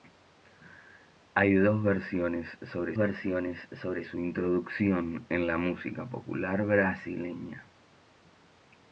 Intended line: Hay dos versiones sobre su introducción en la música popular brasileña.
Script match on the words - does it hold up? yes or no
no